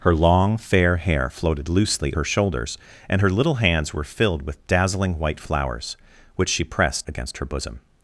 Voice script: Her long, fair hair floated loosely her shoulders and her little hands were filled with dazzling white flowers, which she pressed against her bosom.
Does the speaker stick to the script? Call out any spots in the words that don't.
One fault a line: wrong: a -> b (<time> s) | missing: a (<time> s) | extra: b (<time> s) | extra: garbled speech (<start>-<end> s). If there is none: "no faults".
no faults